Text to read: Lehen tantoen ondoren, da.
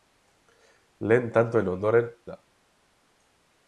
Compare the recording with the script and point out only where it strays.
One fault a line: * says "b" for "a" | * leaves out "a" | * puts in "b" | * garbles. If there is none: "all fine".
all fine